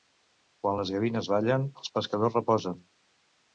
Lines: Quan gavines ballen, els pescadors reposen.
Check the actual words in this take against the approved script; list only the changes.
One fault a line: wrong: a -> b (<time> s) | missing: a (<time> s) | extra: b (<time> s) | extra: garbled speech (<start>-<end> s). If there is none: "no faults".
extra: les (0.8 s)